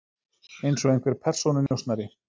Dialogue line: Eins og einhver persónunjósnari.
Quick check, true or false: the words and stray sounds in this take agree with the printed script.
false